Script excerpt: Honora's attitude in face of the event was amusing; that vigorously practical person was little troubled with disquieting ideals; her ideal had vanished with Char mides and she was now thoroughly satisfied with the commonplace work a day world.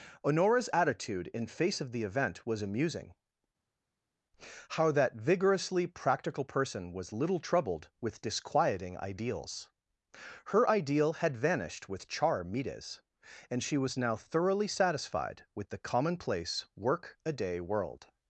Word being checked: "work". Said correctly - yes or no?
yes